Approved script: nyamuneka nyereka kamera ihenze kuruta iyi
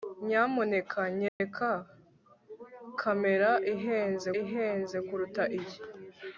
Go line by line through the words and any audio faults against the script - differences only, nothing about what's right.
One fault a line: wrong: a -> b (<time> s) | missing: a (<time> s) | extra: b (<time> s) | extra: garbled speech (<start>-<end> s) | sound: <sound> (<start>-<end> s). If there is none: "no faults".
sound: dropout (1.3-1.4 s)
extra: ihenze (4.4 s)